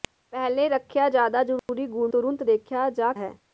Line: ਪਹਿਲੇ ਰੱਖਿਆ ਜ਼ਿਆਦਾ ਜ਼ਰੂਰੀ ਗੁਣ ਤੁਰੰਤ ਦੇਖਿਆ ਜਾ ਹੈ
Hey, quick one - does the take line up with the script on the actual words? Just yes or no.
yes